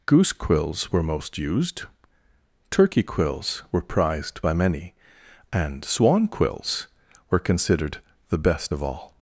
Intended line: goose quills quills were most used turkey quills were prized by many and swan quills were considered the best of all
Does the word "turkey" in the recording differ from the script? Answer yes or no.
no